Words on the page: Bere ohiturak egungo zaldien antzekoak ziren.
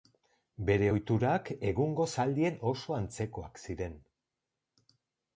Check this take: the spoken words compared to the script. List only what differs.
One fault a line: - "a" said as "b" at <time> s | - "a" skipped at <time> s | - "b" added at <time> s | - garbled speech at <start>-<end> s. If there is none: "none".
- "oso" added at 2.7 s